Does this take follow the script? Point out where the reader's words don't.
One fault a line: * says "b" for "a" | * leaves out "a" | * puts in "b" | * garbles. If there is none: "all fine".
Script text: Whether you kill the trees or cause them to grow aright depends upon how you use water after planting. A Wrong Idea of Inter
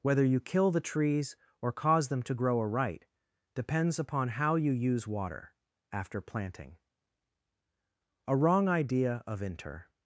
all fine